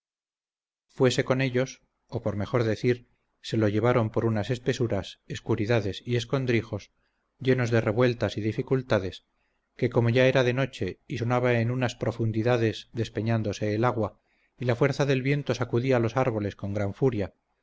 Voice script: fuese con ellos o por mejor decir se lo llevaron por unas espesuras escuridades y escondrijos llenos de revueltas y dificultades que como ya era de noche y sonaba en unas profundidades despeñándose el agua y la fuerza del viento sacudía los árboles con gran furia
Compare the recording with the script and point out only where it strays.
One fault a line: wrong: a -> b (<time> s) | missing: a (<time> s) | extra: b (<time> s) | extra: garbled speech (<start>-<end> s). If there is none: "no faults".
no faults